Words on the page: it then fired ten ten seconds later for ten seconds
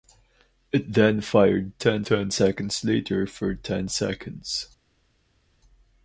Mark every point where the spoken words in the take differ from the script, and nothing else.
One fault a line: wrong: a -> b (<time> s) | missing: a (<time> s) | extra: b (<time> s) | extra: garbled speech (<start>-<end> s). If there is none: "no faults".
no faults